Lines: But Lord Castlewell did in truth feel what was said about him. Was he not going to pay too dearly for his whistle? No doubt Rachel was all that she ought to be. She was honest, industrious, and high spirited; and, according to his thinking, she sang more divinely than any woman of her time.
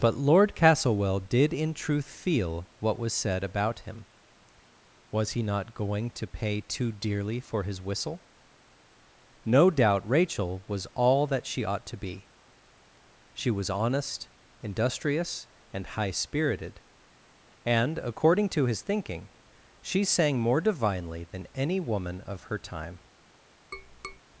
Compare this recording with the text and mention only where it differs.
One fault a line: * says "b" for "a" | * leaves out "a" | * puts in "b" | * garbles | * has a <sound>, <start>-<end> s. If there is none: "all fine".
* has a tap, 23.7-24.2 s